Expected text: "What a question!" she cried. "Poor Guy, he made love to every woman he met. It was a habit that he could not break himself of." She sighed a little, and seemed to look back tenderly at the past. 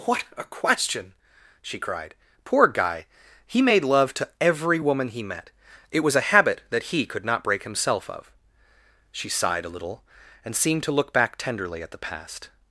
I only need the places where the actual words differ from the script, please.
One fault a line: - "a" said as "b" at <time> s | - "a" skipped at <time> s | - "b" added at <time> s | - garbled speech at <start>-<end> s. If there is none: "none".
none